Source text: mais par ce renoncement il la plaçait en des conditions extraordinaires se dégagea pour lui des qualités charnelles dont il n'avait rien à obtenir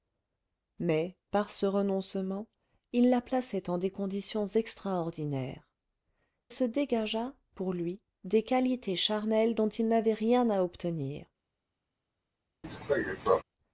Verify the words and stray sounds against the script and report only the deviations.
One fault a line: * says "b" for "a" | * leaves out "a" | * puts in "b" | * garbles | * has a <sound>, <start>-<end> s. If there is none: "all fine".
* has a cough, 12.6-13.4 s